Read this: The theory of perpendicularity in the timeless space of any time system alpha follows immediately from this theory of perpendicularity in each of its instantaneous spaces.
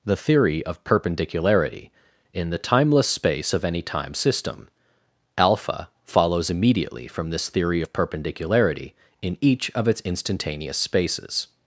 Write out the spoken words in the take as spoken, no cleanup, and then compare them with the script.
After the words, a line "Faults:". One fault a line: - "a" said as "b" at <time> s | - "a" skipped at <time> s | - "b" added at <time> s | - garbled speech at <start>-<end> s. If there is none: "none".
The theory of perpendicularity in the timeless space of any time system alpha follows immediately from this theory of perpendicularity in each of its instantaneous spaces.
Faults:
none